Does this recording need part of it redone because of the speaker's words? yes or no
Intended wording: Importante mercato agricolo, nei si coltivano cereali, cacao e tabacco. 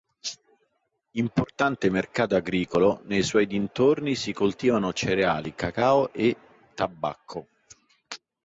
yes